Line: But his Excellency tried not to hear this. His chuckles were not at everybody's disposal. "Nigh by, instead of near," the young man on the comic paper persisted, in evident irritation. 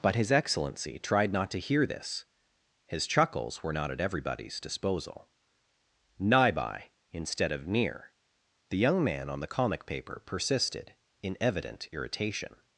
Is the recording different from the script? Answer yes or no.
no